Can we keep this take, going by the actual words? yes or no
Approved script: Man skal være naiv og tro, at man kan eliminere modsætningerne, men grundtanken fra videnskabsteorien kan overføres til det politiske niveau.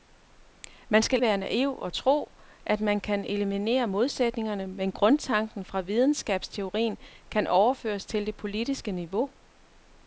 yes